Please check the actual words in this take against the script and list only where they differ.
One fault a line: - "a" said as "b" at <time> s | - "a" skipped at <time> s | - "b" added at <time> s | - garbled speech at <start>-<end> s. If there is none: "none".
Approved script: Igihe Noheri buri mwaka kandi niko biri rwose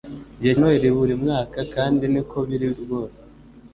none